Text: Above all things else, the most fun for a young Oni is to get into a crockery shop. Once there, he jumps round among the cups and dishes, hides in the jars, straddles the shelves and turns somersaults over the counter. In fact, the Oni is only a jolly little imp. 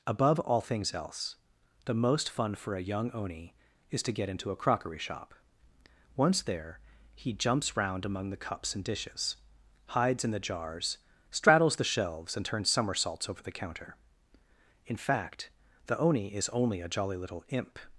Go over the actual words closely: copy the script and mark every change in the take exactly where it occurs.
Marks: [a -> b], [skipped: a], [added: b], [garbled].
Above all things else, the most fun for a young Oni is to get into a crockery shop. Once there, he jumps round among the cups and dishes, hides in the jars, straddles the shelves and turns somersaults over the counter. In fact, the Oni is only a jolly little imp.